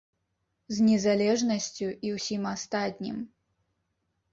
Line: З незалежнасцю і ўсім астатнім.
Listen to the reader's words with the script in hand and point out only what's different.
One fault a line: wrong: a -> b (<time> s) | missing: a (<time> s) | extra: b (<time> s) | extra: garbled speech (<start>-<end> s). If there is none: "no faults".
no faults